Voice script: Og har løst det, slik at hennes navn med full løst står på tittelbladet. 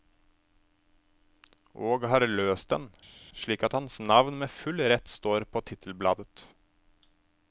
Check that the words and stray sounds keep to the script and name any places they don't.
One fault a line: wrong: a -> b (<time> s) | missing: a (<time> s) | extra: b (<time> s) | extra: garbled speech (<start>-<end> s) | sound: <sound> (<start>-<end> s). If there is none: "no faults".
wrong: det -> den (2.7 s)
wrong: hennes -> hans (3.8 s)
wrong: løst -> rett (4.9 s)